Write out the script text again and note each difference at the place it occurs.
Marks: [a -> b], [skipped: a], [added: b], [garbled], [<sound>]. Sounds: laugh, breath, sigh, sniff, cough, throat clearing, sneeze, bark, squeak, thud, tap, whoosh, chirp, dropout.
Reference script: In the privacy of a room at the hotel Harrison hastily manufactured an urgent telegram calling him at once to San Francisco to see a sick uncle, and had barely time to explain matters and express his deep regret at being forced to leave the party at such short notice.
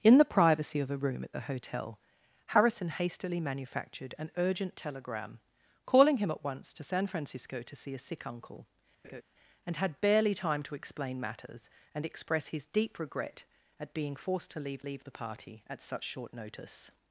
In the privacy of a room at the hotel Harrison hastily manufactured an urgent telegram calling him at once to San Francisco to see a sick uncle, [laugh] and had barely time to explain matters and express his deep regret at being forced to leave [added: leave] the party at such short notice.